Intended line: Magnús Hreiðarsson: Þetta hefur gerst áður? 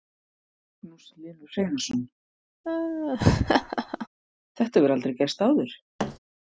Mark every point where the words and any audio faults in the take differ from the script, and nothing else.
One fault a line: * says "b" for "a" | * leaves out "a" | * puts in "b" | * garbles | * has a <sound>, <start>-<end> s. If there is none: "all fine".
* puts in "Hlynur"
* has a laugh, 2.6-4.1 s
* puts in "aldrei"
* has a thud, 6.0-6.2 s